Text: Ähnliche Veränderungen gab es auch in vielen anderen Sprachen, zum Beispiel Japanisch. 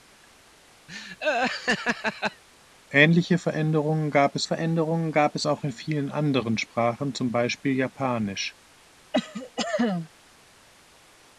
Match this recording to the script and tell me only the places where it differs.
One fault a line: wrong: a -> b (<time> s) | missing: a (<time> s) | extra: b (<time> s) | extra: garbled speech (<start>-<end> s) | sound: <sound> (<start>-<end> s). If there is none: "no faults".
sound: laugh (0.9-2.4 s)
extra: Veränderungen gab es (4.4 s)
sound: cough (9.1-10.1 s)